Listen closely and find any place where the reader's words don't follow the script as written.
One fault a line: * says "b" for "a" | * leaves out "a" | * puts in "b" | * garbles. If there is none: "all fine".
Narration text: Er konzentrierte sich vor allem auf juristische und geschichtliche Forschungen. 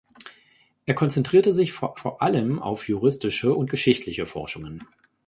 * puts in "vor"